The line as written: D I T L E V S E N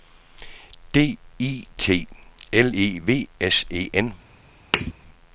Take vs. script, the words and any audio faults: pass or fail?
fail